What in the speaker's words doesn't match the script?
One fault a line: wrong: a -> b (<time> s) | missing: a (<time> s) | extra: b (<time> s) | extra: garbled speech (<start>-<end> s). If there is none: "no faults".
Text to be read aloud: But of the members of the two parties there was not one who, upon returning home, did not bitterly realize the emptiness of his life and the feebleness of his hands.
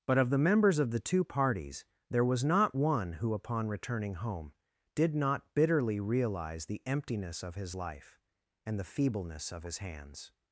no faults